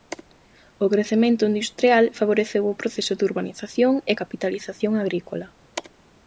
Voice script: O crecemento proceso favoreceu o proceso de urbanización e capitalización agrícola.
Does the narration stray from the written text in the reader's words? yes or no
yes